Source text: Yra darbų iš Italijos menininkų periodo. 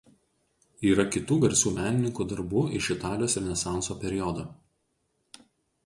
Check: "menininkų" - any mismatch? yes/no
yes